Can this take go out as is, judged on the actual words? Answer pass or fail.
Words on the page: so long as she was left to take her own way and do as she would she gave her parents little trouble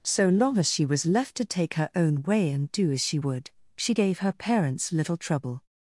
pass